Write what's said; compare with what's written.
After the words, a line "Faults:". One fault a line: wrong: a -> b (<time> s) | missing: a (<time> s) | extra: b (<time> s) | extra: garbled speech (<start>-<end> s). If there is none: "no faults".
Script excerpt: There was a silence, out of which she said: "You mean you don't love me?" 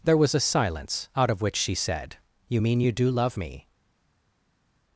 There was a silence, out of which she said: "You mean you do love me?"
Faults:
wrong: don't -> do (2.9 s)